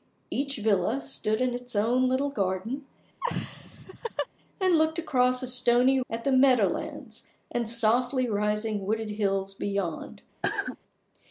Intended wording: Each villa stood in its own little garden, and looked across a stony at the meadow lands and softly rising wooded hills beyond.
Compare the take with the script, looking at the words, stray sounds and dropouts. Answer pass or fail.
fail